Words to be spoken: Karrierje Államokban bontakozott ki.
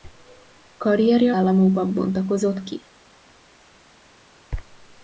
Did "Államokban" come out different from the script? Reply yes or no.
no